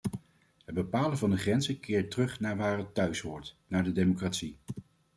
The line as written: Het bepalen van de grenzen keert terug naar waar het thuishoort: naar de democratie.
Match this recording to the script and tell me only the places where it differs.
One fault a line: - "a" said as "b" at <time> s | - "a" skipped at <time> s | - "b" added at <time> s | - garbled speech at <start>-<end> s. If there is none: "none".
none